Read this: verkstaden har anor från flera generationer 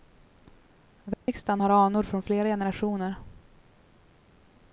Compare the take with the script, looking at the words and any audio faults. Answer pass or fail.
fail